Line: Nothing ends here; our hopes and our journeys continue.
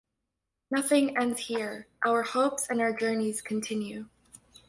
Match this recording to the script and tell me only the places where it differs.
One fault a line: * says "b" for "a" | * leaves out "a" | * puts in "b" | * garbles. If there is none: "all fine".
all fine